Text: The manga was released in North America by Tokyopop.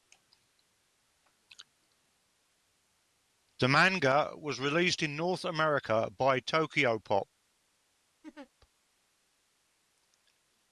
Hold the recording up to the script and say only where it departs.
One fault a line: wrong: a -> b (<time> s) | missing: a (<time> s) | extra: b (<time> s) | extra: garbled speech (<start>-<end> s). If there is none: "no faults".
no faults